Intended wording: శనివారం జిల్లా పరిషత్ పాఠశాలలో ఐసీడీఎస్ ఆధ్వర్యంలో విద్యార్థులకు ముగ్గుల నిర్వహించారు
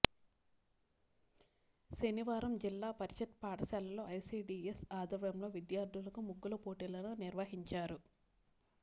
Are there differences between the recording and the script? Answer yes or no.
yes